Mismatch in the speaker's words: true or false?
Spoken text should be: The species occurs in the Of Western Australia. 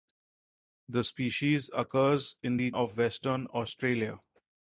false